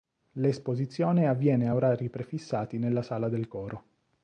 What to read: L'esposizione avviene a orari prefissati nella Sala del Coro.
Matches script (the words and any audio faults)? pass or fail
pass